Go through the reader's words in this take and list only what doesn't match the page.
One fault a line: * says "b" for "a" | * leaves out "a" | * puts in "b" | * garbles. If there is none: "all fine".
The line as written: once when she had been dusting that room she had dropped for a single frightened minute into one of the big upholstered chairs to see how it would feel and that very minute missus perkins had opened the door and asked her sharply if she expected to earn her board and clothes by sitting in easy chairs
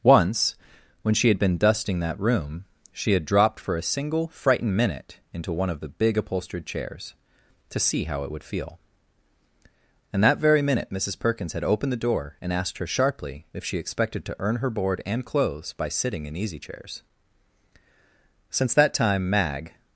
* puts in "since that time mag"